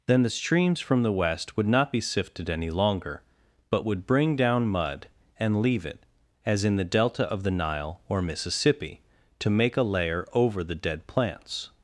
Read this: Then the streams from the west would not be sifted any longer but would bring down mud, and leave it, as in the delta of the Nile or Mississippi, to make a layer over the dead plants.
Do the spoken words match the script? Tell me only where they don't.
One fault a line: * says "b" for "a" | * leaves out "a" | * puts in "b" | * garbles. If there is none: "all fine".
all fine